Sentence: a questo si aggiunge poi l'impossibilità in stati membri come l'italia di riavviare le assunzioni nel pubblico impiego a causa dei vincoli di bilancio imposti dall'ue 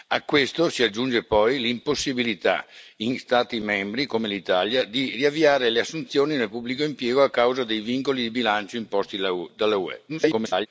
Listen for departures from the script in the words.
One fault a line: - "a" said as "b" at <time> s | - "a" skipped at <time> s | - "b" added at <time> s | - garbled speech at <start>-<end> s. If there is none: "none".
- garbled speech at 10.1-10.7 s